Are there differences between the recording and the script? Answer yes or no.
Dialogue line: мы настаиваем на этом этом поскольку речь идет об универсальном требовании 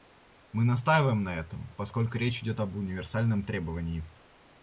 yes